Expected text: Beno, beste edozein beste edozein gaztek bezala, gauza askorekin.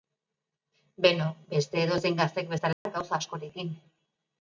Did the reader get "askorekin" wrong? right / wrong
right